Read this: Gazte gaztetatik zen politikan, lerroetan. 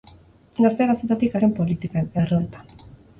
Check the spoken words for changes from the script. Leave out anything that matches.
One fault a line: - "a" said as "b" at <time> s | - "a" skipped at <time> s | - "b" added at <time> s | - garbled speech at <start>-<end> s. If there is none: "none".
none